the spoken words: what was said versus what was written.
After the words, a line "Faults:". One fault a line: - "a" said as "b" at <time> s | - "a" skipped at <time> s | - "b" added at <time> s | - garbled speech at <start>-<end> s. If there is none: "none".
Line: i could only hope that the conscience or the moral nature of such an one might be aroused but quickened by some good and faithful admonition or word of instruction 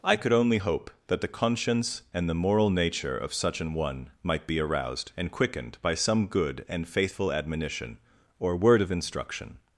i could only hope that the conscience and the moral nature of such an one might be aroused and quickened by some good and faithful admonition or word of instruction
Faults:
- "or" said as "and" at 2.1 s
- "but" said as "and" at 5.2 s